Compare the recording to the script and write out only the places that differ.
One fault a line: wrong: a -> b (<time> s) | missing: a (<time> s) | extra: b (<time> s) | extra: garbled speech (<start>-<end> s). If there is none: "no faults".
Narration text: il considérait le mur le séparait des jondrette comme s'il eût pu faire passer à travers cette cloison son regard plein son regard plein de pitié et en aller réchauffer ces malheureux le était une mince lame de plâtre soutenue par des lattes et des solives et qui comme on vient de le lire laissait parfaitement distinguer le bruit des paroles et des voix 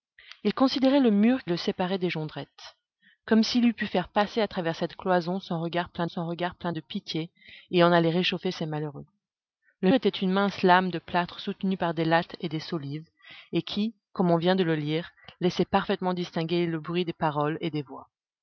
no faults